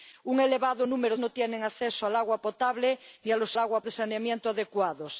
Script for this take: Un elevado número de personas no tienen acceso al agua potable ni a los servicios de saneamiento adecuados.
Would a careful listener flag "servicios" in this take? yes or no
yes